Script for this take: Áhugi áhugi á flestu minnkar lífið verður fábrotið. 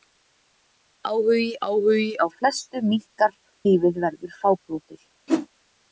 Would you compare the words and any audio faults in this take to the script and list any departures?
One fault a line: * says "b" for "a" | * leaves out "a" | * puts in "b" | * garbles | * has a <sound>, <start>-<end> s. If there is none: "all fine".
* has a whoosh, 5.3-5.5 s